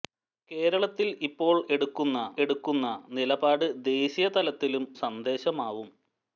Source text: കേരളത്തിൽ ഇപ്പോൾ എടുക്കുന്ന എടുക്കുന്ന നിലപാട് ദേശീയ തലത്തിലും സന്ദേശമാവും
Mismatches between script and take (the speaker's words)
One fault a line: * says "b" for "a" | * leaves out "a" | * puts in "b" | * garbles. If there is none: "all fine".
all fine